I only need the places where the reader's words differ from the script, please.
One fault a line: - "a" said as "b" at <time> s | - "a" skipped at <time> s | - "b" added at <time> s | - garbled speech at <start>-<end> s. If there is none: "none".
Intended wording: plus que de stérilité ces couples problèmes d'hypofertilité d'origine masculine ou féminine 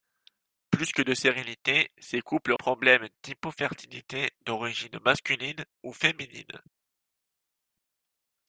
none